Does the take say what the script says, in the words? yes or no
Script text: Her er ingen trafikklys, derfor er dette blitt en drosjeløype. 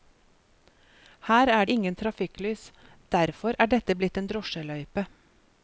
yes